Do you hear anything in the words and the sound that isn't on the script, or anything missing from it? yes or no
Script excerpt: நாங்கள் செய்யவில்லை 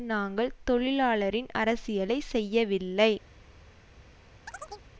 yes